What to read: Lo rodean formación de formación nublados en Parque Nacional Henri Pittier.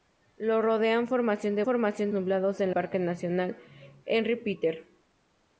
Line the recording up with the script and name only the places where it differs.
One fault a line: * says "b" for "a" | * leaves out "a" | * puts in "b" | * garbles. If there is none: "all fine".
all fine